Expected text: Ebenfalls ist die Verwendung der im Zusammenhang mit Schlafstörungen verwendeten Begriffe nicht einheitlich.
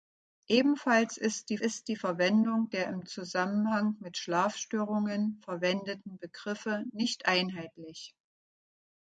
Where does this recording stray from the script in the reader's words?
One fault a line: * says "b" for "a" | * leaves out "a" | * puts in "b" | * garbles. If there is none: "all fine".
* puts in "ist die"